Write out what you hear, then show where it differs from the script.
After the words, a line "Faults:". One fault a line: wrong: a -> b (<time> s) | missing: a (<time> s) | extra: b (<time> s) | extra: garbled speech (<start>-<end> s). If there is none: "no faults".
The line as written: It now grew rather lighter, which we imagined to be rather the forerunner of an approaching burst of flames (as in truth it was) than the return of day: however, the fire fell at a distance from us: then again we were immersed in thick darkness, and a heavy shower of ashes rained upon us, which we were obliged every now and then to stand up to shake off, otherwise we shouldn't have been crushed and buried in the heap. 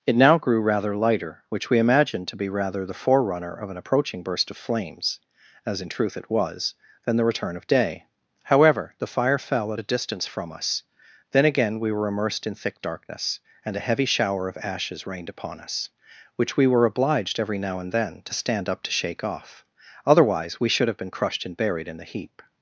It now grew rather lighter, which we imagined to be rather the forerunner of an approaching burst of flames (as in truth it was) than the return of day: however, the fire fell at a distance from us: then again we were immersed in thick darkness, and a heavy shower of ashes rained upon us, which we were obliged every now and then to stand up to shake off, otherwise we should have been crushed and buried in the heap.
Faults:
wrong: shouldn't -> should (20.7 s)